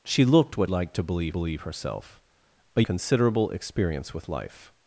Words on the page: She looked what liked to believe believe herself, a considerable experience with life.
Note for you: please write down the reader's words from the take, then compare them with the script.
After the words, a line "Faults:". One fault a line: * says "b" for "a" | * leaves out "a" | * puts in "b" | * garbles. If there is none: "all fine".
She looked what liked to believe believe herself, a considerable experience with life.
Faults:
all fine